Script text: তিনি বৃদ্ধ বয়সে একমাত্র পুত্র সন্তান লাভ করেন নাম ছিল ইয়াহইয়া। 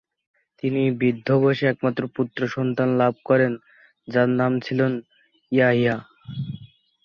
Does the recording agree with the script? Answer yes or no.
no